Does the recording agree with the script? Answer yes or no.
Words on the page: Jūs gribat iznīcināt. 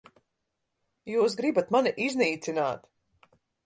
no